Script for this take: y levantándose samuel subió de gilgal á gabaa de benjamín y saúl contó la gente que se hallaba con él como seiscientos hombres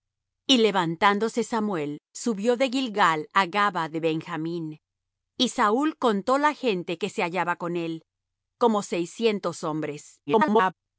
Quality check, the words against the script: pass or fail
fail